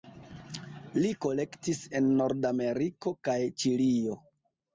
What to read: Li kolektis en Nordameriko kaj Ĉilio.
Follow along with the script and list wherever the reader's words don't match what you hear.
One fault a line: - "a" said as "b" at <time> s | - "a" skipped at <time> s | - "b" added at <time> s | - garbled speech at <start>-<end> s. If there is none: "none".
none